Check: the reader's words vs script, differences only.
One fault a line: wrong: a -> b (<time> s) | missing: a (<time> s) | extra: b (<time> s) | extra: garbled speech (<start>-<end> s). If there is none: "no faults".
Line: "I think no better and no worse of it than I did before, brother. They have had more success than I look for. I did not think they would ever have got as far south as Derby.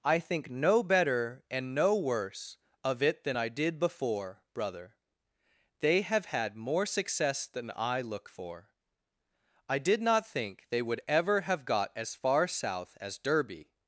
no faults